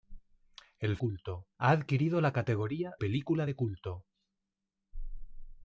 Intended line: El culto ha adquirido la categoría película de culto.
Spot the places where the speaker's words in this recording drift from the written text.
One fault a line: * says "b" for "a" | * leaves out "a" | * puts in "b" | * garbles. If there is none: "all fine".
all fine